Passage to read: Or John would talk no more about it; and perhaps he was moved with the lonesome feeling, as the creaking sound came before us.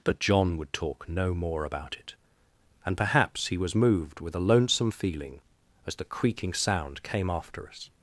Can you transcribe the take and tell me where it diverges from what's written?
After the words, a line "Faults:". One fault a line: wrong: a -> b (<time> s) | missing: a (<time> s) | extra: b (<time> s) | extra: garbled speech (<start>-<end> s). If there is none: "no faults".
But John would talk no more about it; and perhaps he was moved with a lonesome feeling, as the creaking sound came after us.
Faults:
wrong: Or -> But (0.0 s)
wrong: the -> a (4.3 s)
wrong: before -> after (7.3 s)